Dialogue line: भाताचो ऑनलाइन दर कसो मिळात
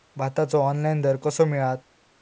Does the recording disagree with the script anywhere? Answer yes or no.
no